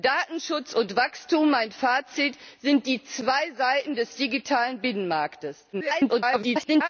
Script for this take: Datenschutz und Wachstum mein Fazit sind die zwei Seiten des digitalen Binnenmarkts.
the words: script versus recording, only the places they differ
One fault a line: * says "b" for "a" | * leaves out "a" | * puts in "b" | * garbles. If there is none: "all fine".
* garbles